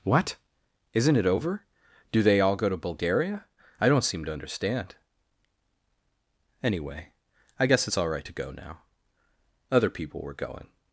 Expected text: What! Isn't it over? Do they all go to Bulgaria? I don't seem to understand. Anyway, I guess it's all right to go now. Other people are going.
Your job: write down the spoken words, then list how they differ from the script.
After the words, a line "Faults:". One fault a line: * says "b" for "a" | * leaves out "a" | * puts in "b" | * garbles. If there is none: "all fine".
What! Isn't it over? Do they all go to Bulgaria? I don't seem to understand. Anyway, I guess it's all right to go now. Other people were going.
Faults:
* says "were" for "are"